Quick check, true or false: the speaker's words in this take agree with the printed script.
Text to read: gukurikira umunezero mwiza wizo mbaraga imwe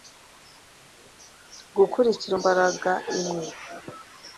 false